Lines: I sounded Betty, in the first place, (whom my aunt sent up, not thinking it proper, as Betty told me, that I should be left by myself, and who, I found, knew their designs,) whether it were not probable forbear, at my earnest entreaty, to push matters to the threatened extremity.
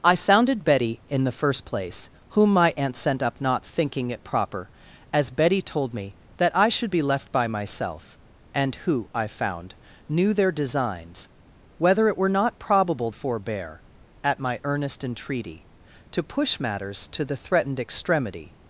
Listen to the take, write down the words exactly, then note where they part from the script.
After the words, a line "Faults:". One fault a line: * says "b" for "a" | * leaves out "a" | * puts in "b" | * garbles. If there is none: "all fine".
I sounded Betty, in the first place, (whom my aunt sent up, not thinking it proper, as Betty told me, that I should be left by myself, and who, I found, knew their designs,) whether it were not probable forbear, at my earnest entreaty, to push matters to the threatened extremity.
Faults:
all fine